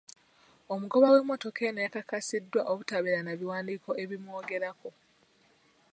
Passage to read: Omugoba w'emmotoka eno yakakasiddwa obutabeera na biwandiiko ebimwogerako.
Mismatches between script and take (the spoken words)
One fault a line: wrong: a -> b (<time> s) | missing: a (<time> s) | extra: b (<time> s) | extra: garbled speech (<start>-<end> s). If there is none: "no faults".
no faults